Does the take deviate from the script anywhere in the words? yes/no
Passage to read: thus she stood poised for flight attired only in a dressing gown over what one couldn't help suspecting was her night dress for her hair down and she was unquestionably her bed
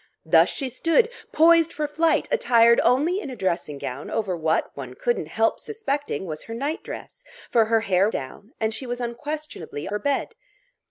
no